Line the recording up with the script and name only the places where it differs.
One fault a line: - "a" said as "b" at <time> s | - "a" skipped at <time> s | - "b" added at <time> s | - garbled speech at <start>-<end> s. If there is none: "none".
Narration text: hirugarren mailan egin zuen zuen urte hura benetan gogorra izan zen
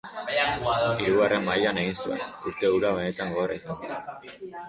- "zuen" skipped at 2.2 s